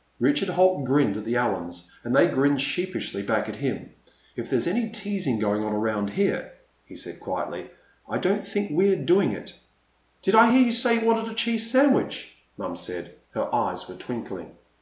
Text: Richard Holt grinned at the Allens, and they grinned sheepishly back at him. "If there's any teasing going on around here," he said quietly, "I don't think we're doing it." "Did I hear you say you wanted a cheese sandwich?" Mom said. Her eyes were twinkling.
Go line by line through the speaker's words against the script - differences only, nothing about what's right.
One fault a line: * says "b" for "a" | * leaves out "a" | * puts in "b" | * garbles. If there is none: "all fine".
all fine